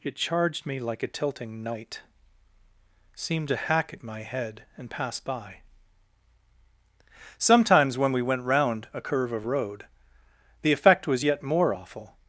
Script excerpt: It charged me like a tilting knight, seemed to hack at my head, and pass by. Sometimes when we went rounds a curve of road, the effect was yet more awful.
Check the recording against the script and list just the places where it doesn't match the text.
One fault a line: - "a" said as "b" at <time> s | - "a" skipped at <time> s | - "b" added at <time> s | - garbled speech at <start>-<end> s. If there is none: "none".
- "rounds" said as "round" at 8.4 s